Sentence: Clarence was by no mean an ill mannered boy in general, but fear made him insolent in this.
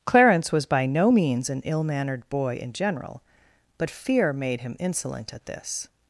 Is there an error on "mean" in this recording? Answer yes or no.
yes